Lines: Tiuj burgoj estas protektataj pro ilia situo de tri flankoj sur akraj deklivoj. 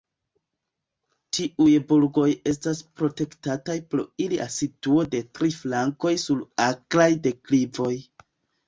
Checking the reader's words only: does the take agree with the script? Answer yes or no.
yes